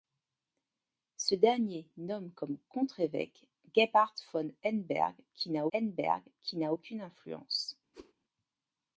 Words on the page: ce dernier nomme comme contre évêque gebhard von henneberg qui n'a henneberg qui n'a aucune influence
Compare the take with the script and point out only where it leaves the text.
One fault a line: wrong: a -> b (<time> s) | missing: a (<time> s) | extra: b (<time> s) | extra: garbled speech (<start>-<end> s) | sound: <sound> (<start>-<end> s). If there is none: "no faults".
sound: whoosh (7.9-8.1 s)